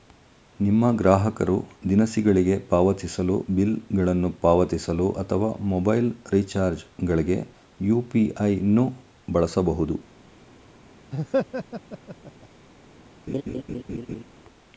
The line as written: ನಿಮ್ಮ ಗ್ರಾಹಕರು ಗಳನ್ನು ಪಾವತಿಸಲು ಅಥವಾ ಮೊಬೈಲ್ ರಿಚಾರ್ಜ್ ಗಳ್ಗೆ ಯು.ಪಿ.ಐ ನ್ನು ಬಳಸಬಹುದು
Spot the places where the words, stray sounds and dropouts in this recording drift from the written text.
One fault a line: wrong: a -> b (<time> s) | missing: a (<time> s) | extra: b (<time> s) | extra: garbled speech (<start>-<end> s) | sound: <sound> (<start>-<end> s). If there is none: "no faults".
extra: ದಿನಸಿಗಳಿಗೆ ಪಾವತಿಸಲು ಬಿಲ್ (1.9 s)
sound: laugh (11.1-12.5 s)
sound: laugh (13.3-14.2 s)